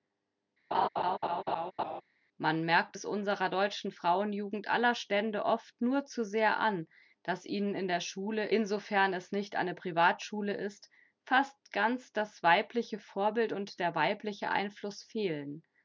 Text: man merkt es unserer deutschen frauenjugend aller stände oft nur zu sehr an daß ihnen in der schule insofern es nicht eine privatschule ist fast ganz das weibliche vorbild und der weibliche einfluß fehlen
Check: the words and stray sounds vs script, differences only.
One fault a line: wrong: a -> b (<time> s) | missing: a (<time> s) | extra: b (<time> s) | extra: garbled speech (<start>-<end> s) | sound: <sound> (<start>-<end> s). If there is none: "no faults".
sound: laugh (0.7-2.0 s)